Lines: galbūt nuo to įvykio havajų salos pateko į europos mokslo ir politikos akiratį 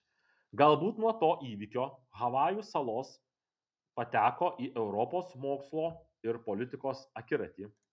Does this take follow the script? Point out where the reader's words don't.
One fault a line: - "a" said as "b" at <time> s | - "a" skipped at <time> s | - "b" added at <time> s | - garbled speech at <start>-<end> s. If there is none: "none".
none